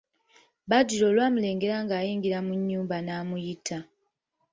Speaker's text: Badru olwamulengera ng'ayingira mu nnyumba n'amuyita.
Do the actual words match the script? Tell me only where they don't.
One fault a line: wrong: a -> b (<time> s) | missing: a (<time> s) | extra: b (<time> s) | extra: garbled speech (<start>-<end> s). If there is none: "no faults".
no faults